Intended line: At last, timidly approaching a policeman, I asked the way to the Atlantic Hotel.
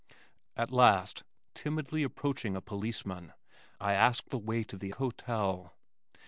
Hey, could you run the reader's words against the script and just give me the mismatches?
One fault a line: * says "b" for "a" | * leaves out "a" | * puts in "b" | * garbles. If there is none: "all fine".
* leaves out "Atlantic"